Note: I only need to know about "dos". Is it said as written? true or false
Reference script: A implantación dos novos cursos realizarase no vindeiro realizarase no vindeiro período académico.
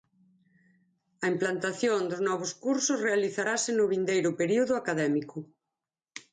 true